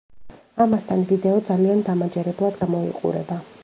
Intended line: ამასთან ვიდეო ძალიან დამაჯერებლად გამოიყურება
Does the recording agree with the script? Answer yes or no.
yes